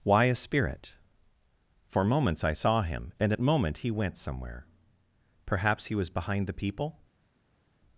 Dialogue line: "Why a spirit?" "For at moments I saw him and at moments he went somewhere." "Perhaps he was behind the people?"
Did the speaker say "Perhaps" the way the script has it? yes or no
yes